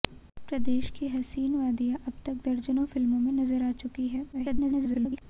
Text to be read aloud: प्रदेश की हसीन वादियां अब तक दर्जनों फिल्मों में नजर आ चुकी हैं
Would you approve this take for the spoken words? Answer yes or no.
no